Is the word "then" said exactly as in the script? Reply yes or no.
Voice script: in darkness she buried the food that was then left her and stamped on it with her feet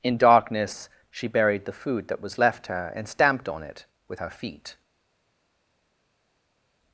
no